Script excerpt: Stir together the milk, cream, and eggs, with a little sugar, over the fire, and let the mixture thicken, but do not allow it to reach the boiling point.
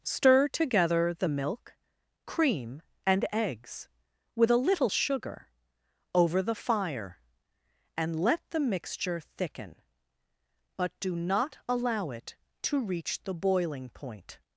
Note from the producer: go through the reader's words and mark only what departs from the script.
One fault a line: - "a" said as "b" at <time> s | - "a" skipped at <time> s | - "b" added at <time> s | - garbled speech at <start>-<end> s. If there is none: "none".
none